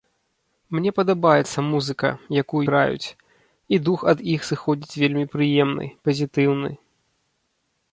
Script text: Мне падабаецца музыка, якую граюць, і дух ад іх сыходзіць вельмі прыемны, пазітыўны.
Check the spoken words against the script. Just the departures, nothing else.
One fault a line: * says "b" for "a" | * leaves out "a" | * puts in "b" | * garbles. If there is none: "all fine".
all fine